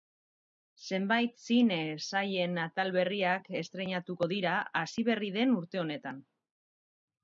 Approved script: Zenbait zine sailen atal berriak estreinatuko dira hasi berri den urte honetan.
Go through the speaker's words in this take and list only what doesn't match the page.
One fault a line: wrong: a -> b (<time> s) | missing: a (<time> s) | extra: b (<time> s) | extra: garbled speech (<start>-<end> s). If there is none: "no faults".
no faults